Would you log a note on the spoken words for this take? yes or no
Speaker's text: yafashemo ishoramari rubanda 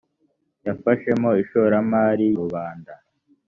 no